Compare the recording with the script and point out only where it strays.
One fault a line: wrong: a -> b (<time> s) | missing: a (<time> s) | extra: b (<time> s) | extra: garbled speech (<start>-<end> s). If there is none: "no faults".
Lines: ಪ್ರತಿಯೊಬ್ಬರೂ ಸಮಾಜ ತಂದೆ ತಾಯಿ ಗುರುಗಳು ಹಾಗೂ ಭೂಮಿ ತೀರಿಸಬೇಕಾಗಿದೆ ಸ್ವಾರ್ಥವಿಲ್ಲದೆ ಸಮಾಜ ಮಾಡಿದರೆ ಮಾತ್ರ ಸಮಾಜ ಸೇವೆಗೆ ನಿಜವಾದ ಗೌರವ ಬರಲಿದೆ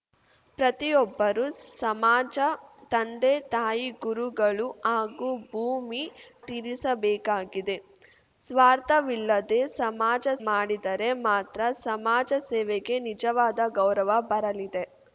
no faults